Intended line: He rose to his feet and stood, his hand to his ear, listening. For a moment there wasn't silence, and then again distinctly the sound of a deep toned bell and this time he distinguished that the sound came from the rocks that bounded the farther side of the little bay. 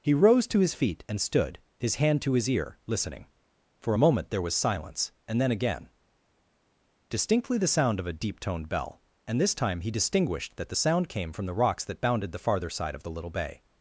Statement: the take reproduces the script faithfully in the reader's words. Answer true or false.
false